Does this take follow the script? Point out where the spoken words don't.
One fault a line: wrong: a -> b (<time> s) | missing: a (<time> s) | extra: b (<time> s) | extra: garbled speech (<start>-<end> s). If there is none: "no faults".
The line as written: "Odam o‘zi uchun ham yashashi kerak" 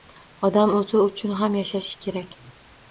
no faults